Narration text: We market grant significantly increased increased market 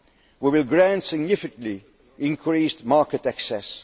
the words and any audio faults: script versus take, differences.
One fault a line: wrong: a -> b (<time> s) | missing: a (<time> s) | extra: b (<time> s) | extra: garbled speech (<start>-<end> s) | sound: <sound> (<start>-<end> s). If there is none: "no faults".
wrong: market -> will (0.5 s)
missing: increased (2.8 s)